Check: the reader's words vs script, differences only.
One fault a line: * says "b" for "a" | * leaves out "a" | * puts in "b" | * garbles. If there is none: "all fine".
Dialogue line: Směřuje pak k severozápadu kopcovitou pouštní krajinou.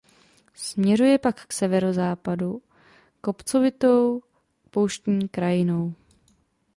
all fine